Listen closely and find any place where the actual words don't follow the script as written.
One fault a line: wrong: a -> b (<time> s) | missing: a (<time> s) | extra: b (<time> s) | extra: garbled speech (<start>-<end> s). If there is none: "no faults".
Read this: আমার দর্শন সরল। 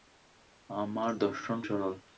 no faults